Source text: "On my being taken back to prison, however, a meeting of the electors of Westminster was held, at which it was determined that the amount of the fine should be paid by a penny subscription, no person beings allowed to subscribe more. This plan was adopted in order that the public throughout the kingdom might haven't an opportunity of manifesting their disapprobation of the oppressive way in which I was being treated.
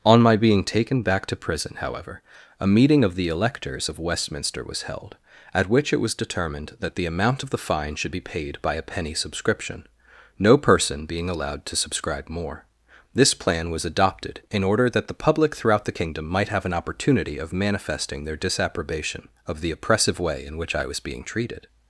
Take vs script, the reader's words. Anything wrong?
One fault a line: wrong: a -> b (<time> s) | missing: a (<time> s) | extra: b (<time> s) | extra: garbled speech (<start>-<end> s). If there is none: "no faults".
wrong: beings -> being (11.1 s)
wrong: haven't -> have (16.5 s)